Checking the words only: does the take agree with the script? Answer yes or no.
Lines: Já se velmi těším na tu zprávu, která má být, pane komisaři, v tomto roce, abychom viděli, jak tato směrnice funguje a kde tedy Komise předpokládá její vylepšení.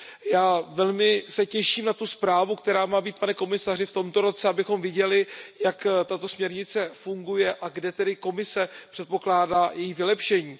yes